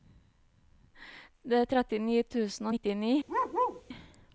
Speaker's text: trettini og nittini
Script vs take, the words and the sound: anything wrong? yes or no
yes